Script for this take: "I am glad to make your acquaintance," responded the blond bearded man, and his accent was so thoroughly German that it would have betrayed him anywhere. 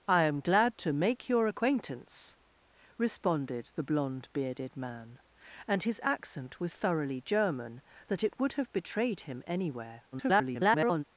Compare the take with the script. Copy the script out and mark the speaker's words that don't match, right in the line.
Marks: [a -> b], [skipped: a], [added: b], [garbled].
"I am glad to make your acquaintance," responded the blond bearded man, and his accent was [skipped: so] thoroughly German that it would have betrayed him anywhere. [garbled]